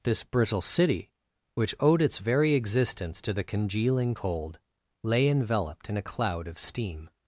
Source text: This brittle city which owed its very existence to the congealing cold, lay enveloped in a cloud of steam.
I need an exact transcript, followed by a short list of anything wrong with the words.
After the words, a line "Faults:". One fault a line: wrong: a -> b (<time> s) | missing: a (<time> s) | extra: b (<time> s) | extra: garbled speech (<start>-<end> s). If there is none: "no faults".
This brittle city which owed its very existence to the congealing cold, lay enveloped in a cloud of steam.
Faults:
no faults